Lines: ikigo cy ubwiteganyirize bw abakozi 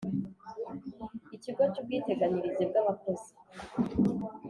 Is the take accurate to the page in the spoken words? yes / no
yes